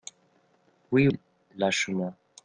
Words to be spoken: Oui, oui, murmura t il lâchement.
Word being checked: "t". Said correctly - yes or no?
no